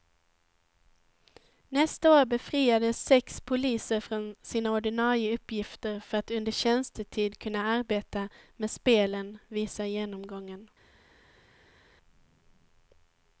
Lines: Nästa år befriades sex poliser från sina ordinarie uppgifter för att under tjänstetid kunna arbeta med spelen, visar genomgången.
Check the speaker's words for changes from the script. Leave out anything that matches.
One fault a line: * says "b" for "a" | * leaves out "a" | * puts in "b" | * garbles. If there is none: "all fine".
all fine